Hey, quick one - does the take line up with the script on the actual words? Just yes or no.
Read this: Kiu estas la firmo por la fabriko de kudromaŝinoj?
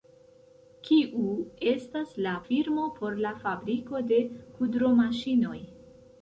yes